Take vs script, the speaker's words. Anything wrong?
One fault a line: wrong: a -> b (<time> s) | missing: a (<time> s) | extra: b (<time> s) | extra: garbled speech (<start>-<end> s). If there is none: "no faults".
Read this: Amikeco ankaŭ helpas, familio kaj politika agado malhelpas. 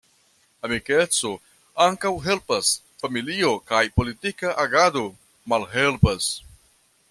no faults